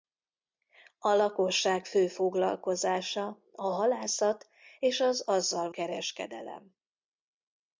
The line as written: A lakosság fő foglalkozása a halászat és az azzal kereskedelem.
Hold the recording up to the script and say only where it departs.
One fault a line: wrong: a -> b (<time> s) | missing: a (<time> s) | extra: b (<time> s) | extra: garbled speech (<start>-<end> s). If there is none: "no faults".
no faults